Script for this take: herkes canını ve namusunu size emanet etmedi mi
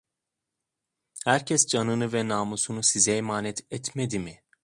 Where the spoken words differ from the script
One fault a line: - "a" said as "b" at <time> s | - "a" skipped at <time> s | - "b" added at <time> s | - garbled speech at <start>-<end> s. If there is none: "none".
none